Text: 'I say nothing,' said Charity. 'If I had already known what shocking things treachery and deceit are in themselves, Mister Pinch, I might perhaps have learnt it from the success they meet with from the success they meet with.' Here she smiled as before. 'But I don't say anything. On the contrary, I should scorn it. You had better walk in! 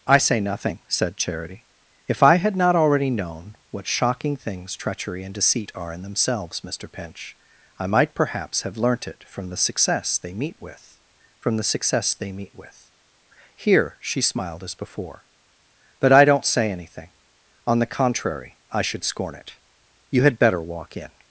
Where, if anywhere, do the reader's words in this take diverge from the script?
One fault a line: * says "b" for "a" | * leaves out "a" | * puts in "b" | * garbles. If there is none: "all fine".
* puts in "not"